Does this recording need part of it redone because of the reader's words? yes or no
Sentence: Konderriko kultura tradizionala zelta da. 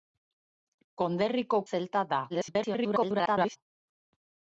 yes